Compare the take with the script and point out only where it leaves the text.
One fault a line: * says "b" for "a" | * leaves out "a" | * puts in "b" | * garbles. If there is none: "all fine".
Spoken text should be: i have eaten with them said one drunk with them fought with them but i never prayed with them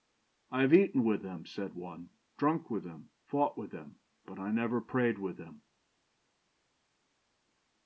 all fine